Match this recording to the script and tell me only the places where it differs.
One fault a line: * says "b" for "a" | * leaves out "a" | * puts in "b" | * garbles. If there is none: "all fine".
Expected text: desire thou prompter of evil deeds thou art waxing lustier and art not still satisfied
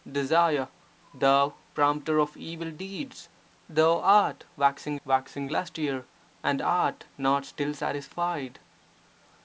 * puts in "waxing"